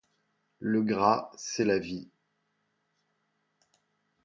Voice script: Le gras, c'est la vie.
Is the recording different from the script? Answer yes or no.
no